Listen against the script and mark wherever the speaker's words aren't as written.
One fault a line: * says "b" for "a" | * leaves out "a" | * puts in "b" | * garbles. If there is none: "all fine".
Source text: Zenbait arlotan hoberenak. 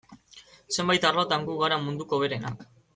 * puts in "gu gara munduko"